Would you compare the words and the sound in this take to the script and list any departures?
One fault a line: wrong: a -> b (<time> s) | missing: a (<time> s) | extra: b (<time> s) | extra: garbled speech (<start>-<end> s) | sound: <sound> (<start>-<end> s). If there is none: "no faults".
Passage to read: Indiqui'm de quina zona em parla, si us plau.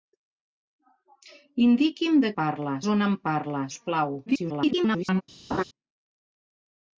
wrong: quina -> parla (2.4 s)
missing: si (3.6 s)
extra: garbled speech (4.3-5.2 s)
sound: laugh (5.5-5.6 s)